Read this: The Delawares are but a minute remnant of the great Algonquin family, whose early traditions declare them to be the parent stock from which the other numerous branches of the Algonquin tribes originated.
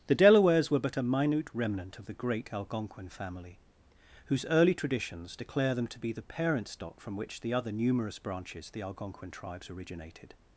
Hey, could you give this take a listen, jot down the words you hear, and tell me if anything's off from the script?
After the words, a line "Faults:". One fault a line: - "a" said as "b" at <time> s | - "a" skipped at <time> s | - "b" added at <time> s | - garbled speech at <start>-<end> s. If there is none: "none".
The Delawares were but a minute remnant of the great Algonquin family, whose early traditions declare them to be the parent stock from which the other numerous branches the Algonquin tribes originated.
Faults:
- "are" said as "were" at 0.7 s
- "of" skipped at 8.7 s